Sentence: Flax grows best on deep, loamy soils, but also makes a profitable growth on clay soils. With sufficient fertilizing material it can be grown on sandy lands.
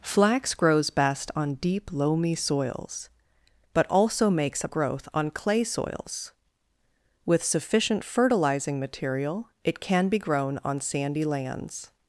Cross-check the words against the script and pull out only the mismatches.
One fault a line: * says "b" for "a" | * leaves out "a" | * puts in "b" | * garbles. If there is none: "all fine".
* leaves out "profitable"